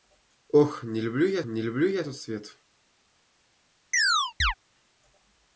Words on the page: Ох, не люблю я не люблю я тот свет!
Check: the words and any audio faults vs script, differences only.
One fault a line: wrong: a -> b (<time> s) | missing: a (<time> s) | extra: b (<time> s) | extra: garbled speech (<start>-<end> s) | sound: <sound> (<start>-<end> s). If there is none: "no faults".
sound: chirp (3.9-4.5 s)